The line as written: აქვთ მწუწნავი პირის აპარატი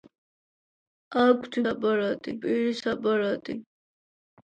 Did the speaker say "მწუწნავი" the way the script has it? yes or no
no